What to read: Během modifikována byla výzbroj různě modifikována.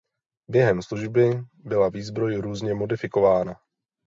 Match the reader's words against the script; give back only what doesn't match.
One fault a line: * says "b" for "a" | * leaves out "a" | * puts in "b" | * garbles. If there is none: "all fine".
* says "služby" for "modifikována"